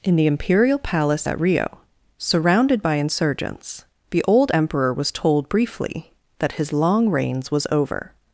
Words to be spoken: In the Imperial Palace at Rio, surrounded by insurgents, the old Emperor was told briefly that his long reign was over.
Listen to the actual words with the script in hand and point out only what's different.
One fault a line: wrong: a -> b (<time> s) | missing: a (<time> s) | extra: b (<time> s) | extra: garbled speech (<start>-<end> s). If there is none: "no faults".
wrong: reign -> reigns (7.1 s)